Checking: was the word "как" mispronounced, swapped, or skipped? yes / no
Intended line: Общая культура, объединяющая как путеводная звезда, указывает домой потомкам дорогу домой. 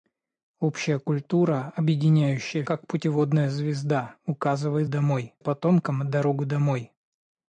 no